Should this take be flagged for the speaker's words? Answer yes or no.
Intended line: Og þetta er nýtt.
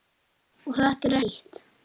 no